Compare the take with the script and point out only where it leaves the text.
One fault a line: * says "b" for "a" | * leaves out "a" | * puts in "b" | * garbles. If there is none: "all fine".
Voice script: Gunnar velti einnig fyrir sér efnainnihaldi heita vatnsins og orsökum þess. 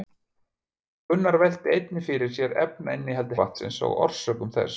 * leaves out "heita"